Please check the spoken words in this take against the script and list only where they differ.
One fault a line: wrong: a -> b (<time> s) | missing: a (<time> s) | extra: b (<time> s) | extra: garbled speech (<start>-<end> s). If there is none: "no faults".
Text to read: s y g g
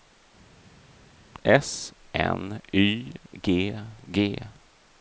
extra: n (2.1 s)